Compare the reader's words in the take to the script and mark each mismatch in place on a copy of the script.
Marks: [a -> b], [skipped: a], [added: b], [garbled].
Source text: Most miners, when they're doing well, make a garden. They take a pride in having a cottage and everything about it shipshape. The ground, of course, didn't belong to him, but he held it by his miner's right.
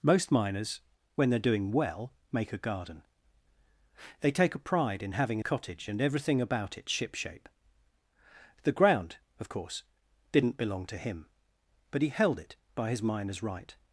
Most miners, when they're doing well, make a garden. They take a pride in having a cottage and everything about it shipshape. The ground, of course, didn't belong to him, but he held it by his miner's right.